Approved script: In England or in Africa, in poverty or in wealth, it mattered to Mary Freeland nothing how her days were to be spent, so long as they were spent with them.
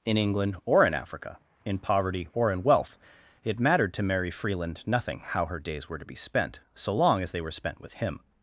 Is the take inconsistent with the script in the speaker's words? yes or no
yes